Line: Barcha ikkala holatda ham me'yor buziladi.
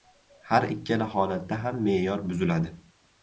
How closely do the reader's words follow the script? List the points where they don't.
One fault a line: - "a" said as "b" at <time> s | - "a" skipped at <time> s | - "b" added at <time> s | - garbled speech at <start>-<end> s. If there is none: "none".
- "Barcha" said as "Har" at 0.5 s